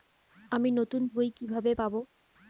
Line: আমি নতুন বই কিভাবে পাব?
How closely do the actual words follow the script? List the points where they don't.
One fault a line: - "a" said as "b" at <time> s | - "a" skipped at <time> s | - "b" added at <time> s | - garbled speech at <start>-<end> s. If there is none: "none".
none